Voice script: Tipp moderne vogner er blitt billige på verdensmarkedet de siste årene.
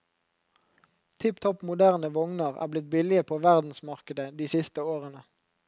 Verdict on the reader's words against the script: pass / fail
fail